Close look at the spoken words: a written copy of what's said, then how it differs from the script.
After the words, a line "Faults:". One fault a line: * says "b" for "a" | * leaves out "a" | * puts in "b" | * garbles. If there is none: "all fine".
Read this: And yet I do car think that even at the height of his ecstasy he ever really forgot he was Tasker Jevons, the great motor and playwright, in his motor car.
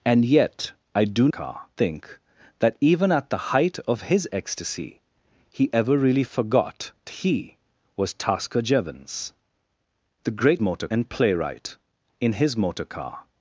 And yet I do car think that even at the height of his ecstasy he ever really forgot he was Tasker Jevons, the great motor and playwright, in his motor car.
Faults:
all fine